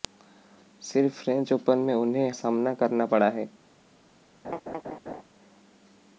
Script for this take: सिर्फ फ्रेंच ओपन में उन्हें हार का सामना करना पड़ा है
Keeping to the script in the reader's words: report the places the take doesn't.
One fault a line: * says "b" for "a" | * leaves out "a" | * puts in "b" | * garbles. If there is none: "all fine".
* leaves out "हार का"